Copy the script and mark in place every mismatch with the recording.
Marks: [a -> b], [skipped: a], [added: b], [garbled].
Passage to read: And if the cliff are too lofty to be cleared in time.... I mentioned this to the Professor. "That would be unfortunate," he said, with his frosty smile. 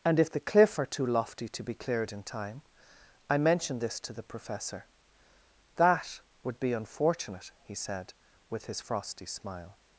And if the cliff are too lofty to be cleared in time.... I mentioned this to the Professor. "That would be unfortunate," he said, with his frosty smile.